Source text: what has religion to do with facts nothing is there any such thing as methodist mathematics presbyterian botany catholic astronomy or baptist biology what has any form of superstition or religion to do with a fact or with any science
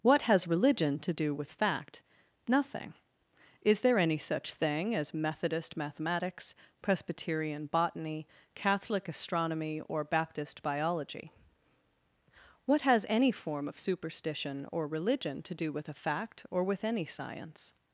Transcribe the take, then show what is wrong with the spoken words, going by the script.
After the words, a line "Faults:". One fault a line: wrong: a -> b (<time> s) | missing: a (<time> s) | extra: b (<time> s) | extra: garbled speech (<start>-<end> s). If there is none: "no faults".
what has religion to do with fact nothing is there any such thing as methodist mathematics presbyterian botany catholic astronomy or baptist biology what has any form of superstition or religion to do with a fact or with any science
Faults:
wrong: facts -> fact (1.5 s)